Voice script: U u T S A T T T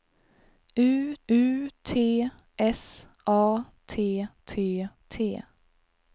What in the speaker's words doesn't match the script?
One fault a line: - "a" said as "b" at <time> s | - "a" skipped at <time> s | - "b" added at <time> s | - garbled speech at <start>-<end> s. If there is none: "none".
none